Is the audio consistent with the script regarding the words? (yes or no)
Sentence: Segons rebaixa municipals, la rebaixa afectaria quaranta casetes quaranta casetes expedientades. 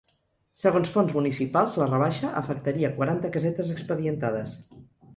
no